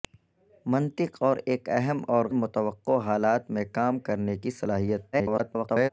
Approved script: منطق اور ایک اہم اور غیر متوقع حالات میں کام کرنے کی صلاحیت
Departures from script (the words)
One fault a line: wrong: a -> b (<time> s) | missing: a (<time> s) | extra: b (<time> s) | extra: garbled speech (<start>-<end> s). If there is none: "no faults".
missing: غیر (2.2 s)
extra: garbled speech (5.1-5.9 s)